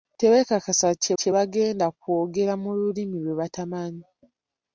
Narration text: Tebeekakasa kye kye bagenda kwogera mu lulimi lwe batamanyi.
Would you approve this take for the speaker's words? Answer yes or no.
yes